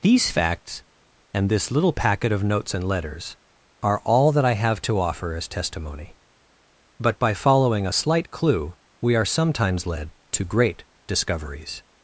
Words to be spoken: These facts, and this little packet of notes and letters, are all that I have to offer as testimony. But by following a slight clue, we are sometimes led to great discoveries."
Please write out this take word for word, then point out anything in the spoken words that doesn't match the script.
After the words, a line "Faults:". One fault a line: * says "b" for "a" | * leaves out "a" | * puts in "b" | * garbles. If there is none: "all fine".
These facts, and this little packet of notes and letters, are all that I have to offer as testimony. But by following a slight clue, we are sometimes led to great discoveries."
Faults:
all fine